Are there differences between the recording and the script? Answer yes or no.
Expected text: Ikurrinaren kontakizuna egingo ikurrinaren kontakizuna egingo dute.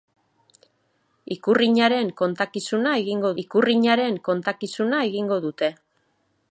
no